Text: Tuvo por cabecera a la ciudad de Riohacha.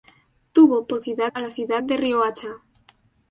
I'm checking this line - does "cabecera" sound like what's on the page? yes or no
no